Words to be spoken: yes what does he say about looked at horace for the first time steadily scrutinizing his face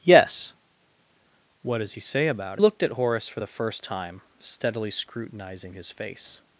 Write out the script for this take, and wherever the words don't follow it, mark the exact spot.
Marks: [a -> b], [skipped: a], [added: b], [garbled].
yes what does he say about looked at horace for the first time steadily scrutinizing his face